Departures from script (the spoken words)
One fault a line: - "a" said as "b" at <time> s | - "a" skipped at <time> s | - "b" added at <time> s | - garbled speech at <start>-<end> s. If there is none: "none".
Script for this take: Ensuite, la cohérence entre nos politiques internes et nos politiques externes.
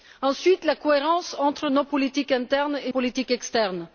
- "nos" skipped at 2.9 s